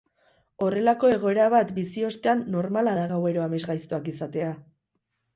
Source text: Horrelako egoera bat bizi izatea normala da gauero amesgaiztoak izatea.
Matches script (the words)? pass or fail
fail